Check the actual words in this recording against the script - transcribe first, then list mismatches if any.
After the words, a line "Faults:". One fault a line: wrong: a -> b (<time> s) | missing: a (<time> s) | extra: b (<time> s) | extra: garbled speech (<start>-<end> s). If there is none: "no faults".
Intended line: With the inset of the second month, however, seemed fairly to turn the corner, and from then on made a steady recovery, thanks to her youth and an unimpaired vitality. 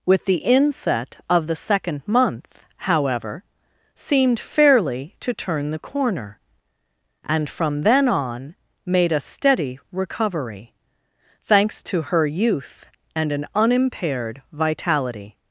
With the inset of the second month, however, seemed fairly to turn the corner, and from then on made a steady recovery, thanks to her youth and an unimpaired vitality.
Faults:
no faults